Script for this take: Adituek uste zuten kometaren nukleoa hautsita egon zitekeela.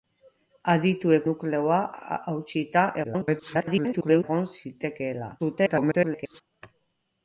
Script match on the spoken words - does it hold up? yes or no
no